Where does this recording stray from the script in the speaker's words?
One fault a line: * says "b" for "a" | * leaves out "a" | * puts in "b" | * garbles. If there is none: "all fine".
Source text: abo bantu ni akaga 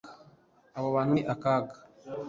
all fine